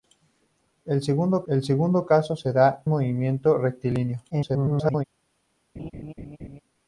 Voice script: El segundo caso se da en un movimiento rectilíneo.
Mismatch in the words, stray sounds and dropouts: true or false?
true